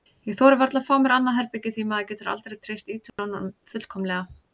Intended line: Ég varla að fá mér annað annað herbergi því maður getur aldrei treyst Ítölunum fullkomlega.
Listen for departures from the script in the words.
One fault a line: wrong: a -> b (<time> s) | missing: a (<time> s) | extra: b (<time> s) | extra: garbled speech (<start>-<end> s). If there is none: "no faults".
extra: þori (0.4 s)
missing: annað (1.4 s)